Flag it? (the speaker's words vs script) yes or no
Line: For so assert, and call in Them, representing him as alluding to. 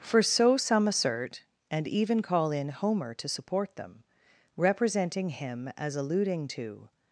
yes